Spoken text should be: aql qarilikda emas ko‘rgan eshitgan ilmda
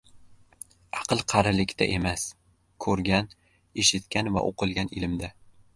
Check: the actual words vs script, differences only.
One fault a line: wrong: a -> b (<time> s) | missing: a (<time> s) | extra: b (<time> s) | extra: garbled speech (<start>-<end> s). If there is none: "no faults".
extra: va o‘qilgan (4.4 s)